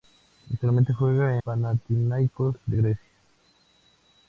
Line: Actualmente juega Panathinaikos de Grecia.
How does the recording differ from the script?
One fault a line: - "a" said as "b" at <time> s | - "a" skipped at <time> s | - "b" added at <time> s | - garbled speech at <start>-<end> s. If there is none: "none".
none